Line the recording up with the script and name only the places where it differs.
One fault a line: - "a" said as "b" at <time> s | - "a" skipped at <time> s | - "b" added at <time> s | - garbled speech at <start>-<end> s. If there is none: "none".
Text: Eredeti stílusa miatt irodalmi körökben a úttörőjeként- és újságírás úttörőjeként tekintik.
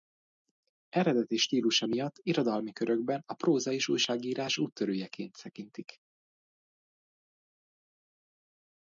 - "úttörőjeként" said as "próza" at 3.3 s